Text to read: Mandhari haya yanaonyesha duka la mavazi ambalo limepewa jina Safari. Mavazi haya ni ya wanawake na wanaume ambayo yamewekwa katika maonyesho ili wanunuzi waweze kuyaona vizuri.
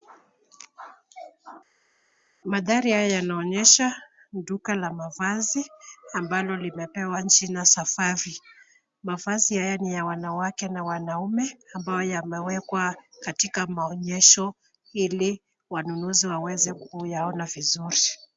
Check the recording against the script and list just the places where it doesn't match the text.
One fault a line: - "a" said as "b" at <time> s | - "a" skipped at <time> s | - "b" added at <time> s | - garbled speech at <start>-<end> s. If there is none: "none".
none